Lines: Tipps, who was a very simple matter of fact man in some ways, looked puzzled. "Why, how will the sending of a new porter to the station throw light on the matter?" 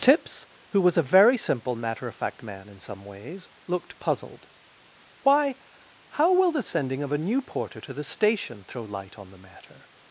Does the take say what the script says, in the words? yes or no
yes